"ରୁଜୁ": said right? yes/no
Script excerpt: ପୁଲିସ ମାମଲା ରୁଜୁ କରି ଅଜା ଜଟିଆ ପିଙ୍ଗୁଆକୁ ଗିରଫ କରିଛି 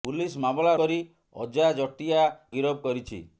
no